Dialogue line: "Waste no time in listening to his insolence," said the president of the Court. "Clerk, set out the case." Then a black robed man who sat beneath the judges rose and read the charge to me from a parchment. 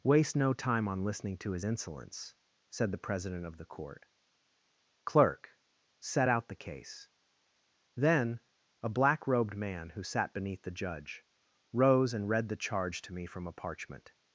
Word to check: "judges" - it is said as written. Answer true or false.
false